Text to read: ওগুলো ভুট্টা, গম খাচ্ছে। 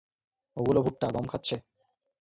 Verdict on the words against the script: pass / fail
pass